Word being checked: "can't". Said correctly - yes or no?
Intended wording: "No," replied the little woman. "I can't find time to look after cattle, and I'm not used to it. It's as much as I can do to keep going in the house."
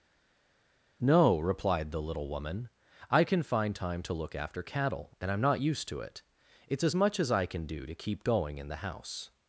no